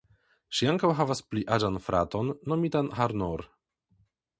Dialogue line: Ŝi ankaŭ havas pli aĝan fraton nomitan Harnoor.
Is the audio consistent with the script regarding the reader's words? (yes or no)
yes